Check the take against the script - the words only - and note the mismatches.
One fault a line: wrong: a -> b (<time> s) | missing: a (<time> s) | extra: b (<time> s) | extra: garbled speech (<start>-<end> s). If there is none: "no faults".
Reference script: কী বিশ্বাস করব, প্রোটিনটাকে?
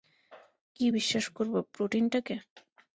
no faults